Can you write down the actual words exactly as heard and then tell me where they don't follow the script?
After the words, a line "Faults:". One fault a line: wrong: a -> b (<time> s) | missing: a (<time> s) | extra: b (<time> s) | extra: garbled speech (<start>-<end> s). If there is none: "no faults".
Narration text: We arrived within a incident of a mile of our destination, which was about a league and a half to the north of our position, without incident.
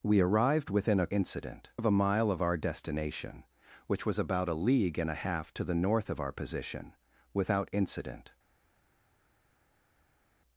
We arrived within a incident of a mile of our destination, which was about a league and a half to the north of our position, without incident.
Faults:
no faults